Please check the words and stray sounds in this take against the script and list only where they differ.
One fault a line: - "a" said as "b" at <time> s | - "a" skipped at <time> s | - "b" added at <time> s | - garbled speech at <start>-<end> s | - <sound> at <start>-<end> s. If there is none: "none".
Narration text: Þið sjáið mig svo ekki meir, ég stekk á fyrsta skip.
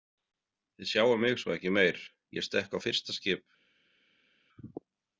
none